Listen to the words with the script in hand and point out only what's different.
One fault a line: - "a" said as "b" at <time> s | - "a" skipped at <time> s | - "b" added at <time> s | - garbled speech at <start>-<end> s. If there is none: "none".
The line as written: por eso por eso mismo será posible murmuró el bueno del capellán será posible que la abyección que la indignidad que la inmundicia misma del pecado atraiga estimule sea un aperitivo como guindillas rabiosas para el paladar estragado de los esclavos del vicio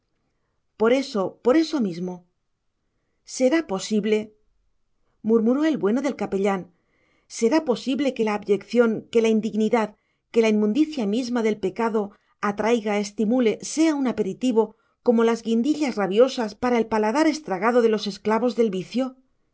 - "las" added at 15.2 s